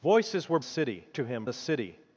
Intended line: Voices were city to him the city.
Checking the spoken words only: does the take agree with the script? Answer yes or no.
yes